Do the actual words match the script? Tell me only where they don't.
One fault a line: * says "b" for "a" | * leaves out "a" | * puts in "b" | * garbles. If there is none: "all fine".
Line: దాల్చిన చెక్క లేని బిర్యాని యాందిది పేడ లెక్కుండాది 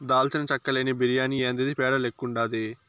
all fine